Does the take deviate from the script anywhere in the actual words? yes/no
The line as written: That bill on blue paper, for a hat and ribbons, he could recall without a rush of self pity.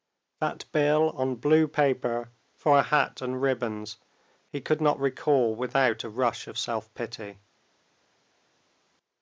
yes